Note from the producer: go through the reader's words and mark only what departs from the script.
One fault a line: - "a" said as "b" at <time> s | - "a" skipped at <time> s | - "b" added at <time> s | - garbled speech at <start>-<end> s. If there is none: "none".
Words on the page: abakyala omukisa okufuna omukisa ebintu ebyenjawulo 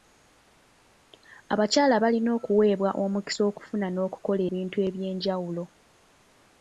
- "balina okuweebwa" added at 2.0 s
- "omukisa" said as "n'okukola" at 3.9 s